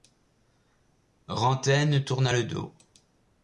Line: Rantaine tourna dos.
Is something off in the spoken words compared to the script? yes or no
yes